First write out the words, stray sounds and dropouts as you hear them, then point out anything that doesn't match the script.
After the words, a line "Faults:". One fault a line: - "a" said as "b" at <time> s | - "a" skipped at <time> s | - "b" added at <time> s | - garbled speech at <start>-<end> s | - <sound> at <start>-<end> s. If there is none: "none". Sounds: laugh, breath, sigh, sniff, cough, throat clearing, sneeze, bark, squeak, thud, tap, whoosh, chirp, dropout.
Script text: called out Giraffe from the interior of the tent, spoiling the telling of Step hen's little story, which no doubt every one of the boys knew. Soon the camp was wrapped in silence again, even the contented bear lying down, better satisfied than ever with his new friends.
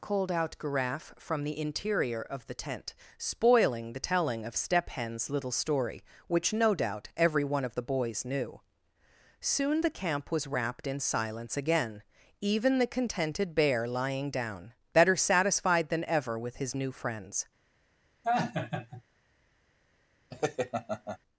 called out Giraffe from the interior of the tent, spoiling the telling of Step hen's little story, which no doubt every one of the boys knew. Soon the camp was wrapped in silence again, even the contented bear lying down, better satisfied than ever with his new friends.
Faults:
- laugh at 18.2-19.0 s
- laugh at 20.3-21.2 s